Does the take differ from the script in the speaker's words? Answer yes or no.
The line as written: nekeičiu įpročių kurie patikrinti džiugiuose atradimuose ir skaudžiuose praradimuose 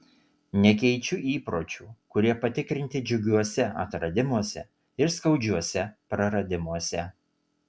no